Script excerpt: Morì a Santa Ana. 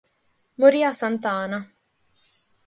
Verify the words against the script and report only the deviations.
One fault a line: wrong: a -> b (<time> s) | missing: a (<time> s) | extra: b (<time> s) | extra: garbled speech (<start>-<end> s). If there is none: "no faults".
no faults